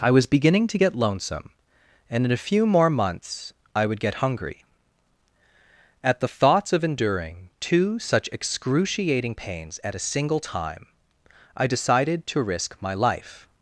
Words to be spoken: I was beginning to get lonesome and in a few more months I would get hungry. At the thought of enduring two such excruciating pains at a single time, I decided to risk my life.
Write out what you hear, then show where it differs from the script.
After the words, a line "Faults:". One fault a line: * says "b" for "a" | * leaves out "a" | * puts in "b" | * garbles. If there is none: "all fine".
I was beginning to get lonesome and in a few more months I would get hungry. At the thoughts of enduring two such excruciating pains at a single time, I decided to risk my life.
Faults:
* says "thoughts" for "thought"